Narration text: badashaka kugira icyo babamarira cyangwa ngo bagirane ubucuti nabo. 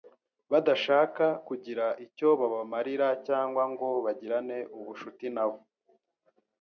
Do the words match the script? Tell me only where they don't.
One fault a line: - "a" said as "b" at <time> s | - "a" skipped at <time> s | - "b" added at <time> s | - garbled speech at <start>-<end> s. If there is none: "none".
none